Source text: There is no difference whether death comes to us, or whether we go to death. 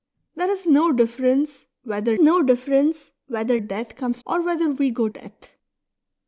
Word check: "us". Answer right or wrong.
wrong